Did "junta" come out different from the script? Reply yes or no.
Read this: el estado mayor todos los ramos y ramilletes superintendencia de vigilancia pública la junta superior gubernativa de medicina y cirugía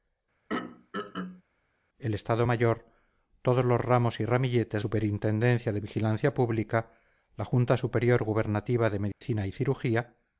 no